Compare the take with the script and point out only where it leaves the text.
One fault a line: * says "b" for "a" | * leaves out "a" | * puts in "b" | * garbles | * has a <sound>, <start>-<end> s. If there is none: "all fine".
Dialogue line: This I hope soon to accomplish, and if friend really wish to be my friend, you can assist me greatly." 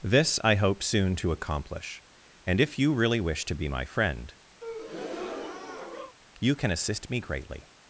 * says "you" for "friend"
* has a breath, 4.6-6.2 s